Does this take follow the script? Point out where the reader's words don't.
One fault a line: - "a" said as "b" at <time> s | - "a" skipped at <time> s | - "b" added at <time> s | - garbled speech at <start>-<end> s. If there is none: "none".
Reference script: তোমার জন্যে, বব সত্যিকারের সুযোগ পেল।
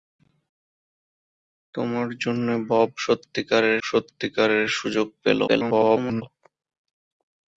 - "সত্যিকারের" added at 3.8 s
- garbled speech at 5.5-6.2 s